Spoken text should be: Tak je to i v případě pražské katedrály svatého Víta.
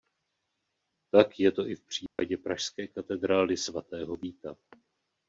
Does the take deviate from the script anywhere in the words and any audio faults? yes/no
yes